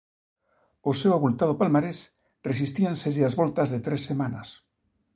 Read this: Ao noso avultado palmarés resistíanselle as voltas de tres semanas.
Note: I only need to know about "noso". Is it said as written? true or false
false